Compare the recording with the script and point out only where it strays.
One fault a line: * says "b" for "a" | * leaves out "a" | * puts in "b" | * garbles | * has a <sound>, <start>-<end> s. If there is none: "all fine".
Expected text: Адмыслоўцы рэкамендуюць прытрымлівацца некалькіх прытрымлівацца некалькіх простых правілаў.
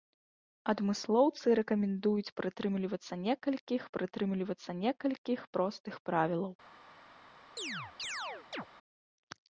* has a chirp, 7.6-8.7 s